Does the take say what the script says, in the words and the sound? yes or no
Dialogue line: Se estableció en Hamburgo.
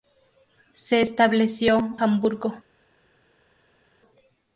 no